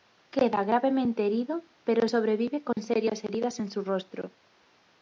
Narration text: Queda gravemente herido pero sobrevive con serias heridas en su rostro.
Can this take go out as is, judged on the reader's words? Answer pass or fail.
pass